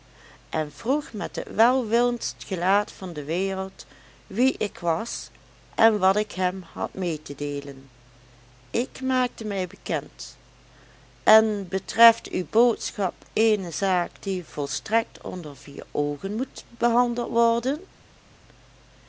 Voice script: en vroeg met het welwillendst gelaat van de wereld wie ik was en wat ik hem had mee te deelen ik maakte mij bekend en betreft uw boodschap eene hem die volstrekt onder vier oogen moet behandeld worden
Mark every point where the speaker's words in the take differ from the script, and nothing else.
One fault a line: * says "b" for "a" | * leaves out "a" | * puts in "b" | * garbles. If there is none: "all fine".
* says "zaak" for "hem"